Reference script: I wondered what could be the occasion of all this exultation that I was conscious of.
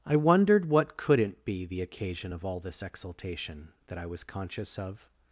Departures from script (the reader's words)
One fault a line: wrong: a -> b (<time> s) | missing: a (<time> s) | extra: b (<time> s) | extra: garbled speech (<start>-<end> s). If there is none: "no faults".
wrong: could -> couldn't (1.0 s)